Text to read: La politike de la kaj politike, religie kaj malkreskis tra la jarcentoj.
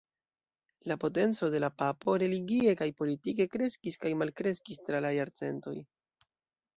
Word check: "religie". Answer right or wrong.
wrong